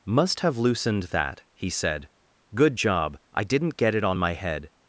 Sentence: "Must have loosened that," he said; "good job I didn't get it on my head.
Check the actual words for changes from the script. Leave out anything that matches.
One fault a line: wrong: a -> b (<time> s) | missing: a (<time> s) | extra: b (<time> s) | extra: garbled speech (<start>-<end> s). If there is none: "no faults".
no faults